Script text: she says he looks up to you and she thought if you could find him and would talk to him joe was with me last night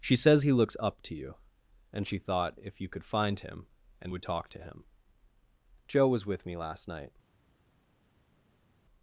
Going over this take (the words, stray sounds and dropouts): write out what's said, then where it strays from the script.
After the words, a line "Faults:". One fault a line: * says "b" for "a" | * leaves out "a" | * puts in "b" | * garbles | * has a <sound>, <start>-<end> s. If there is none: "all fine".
she says he looks up to you and she thought if you could find him and would talk to him joe was with me last night
Faults:
all fine